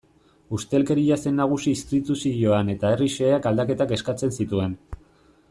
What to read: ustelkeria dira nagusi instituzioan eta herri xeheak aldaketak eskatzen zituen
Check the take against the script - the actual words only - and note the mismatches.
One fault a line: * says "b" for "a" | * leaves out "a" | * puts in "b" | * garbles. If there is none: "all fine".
* says "zen" for "dira"